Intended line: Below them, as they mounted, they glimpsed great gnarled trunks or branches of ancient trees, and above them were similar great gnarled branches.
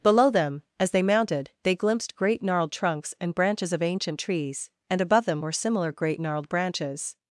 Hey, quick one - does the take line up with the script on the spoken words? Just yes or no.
no